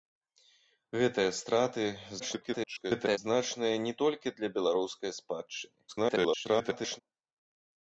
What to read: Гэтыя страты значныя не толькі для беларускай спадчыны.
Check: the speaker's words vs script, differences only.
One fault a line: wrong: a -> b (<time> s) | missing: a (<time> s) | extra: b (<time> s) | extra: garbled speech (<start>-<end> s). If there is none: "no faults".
extra: garbled speech (2.2-3.2 s)
extra: garbled speech (5.9-7.0 s)